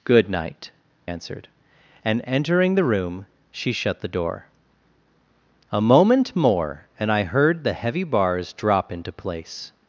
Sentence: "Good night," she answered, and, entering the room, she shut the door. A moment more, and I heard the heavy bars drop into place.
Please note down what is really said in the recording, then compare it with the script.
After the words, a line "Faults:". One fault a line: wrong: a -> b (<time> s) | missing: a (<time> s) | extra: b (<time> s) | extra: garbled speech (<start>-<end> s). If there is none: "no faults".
"Good night," answered, and, entering the room, she shut the door. A moment more, and I heard the heavy bars drop into place.
Faults:
missing: she (0.7 s)